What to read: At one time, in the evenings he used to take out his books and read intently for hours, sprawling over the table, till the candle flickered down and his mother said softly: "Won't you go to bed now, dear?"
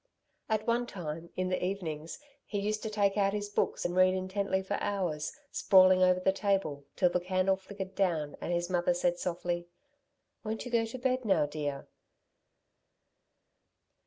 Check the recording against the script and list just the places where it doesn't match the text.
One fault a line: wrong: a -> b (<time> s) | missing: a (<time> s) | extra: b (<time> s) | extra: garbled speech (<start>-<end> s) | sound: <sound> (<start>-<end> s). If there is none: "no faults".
no faults